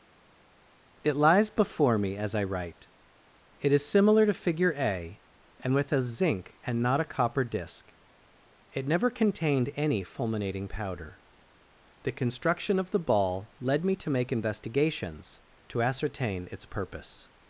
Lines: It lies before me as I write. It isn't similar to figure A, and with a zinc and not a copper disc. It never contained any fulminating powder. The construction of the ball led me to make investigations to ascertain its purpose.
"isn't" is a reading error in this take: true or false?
true